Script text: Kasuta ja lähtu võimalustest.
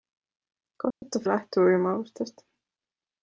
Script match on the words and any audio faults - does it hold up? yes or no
no